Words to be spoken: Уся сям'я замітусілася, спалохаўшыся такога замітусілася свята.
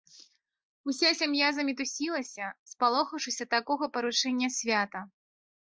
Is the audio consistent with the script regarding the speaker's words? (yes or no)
no